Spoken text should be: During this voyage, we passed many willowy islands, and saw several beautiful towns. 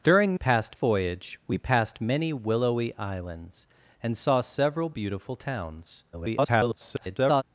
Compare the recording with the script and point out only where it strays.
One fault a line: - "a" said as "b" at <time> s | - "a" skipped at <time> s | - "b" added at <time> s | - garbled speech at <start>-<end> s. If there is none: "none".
- "this" said as "passed" at 0.3 s
- garbled speech at 6.1-7.4 s